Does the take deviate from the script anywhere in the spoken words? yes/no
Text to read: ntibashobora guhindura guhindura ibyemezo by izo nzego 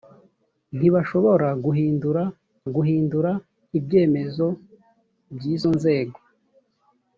no